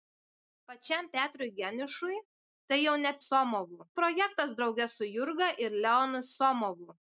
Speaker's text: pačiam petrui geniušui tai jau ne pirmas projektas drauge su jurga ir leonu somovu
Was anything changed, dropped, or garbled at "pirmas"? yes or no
yes